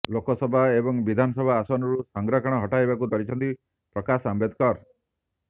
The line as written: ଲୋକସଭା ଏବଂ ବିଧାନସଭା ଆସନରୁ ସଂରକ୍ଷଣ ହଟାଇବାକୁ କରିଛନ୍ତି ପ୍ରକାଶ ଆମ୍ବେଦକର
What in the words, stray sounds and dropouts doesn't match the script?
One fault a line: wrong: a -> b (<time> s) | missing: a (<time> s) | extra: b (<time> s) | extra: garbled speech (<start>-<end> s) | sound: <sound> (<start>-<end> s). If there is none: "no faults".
no faults